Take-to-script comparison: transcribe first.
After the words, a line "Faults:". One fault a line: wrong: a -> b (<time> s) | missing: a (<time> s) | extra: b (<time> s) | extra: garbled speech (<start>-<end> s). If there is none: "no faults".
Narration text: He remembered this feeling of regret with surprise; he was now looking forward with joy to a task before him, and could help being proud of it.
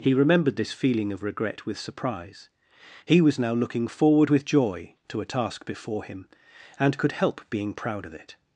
He remembered this feeling of regret with surprise; he was now looking forward with joy to a task before him, and could help being proud of it.
Faults:
no faults